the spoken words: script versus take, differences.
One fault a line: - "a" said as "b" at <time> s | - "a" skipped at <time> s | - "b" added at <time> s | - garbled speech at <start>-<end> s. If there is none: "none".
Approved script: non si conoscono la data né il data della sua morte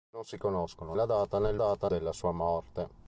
none